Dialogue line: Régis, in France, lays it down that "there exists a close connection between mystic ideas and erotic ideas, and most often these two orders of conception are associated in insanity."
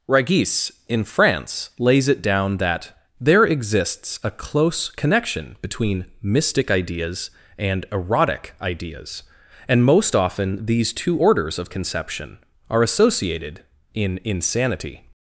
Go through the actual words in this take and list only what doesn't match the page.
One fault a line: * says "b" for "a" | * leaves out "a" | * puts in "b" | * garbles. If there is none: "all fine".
all fine